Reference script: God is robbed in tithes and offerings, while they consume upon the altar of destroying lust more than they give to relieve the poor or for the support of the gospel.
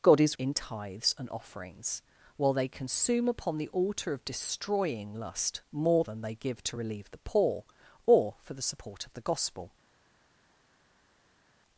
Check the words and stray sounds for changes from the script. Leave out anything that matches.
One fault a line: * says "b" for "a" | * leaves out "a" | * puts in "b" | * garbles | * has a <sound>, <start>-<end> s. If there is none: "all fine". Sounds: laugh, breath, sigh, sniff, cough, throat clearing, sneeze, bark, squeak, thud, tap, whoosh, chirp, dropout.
* leaves out "robbed"